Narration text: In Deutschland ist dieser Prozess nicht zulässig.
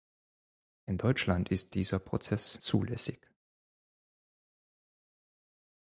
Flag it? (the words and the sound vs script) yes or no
yes